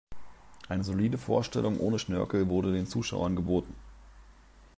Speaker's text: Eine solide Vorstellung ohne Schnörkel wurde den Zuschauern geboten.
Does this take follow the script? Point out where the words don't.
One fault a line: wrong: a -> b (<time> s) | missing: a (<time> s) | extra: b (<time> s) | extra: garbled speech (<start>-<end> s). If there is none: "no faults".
no faults